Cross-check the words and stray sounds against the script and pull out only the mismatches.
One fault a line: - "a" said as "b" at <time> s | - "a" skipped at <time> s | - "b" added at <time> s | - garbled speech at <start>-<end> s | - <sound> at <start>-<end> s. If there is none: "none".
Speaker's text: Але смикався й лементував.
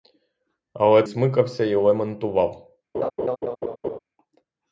- laugh at 2.9-4.0 s